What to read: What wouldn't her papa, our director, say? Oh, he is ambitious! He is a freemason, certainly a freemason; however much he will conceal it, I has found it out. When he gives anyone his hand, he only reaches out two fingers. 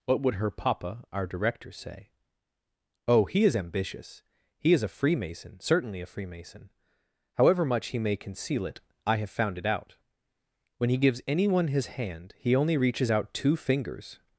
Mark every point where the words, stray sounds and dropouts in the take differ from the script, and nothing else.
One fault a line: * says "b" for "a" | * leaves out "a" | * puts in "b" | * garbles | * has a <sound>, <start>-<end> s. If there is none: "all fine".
* says "would" for "wouldn't"
* says "may" for "will"
* says "have" for "has"